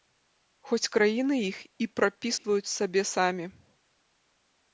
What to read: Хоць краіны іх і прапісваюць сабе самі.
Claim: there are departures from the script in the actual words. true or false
false